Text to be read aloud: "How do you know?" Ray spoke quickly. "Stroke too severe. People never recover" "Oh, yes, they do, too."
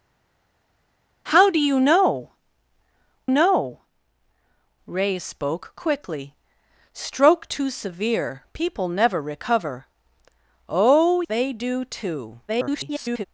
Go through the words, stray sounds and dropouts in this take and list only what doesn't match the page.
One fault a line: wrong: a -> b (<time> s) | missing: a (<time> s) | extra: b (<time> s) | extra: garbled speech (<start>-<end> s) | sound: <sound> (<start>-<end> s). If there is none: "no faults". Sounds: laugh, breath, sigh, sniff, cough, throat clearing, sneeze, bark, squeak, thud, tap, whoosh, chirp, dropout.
extra: know (3.3 s)
missing: yes (11.2 s)
extra: garbled speech (12.5-13.3 s)